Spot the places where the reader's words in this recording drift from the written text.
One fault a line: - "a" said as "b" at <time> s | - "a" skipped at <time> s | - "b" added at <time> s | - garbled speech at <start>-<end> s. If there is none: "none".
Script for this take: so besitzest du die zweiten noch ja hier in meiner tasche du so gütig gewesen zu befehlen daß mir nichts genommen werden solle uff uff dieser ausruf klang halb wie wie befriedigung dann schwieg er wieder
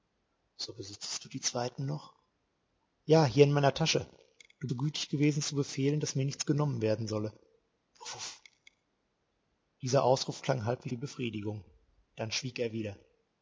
none